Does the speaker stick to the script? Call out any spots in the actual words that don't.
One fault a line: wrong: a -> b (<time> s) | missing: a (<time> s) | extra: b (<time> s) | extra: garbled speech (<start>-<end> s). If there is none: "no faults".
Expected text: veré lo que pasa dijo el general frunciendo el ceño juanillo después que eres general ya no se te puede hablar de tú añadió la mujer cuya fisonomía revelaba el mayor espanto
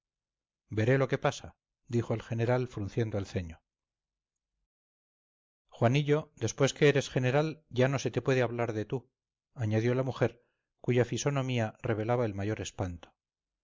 no faults